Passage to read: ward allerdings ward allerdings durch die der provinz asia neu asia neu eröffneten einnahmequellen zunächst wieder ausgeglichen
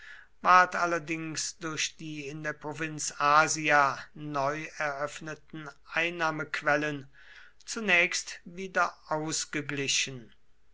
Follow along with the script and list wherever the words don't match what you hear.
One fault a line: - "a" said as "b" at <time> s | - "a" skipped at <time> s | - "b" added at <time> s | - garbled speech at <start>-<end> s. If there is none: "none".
- "ward allerdings" skipped at 1.6 s
- "in" added at 2.3 s
- "asia neu" skipped at 4.7 s